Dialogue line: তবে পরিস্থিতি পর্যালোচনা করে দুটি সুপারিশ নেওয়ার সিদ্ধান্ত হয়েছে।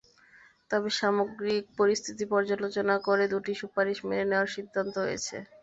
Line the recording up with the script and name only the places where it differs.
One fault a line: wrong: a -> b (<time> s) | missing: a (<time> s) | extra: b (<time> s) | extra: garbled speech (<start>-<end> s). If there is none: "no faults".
extra: সামগ্রিক (1.0 s)
extra: মেনে (4.1 s)